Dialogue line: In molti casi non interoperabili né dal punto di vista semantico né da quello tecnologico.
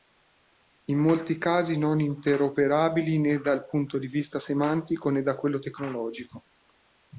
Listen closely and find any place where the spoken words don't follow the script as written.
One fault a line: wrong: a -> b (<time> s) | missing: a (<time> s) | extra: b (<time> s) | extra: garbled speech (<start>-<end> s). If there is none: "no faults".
no faults